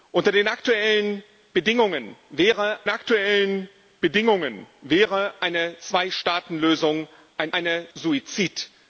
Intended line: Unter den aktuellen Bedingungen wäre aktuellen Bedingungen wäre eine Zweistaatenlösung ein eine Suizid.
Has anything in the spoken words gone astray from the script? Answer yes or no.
no